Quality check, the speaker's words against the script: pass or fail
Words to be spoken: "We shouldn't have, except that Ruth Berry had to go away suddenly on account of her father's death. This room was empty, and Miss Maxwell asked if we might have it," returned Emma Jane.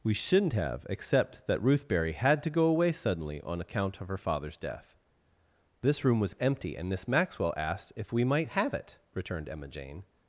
pass